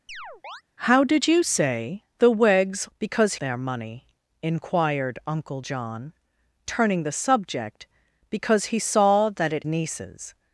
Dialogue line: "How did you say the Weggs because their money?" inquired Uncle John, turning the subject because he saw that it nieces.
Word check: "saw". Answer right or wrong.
right